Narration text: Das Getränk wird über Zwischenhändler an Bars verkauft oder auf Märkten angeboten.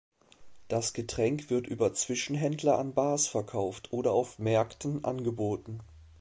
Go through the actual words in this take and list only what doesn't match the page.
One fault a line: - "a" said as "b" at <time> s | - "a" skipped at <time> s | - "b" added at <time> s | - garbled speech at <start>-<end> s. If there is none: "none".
none